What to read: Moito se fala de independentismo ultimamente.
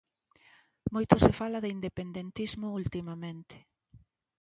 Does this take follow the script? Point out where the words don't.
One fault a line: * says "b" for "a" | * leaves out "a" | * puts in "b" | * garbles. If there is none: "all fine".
all fine